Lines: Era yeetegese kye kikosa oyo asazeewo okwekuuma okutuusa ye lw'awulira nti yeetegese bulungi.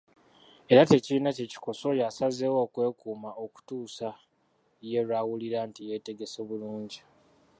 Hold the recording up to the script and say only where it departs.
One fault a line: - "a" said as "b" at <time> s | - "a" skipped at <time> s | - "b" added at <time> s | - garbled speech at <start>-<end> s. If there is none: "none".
- "yeetegese" said as "tekirina" at 0.9 s